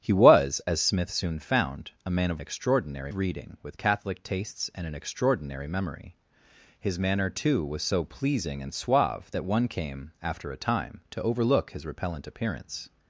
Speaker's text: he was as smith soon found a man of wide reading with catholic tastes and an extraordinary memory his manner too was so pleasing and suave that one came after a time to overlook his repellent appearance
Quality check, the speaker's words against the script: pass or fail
fail